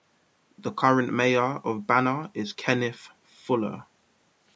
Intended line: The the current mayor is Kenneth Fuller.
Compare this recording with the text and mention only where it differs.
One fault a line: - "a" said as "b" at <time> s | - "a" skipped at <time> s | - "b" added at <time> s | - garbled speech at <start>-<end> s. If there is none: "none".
- "the" skipped at 0.7 s
- "of Banner" added at 1.6 s